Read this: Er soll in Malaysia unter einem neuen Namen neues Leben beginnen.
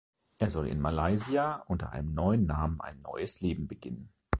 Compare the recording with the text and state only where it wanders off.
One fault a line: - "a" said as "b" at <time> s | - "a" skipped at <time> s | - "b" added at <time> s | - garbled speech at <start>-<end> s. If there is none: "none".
- "ein" added at 2.8 s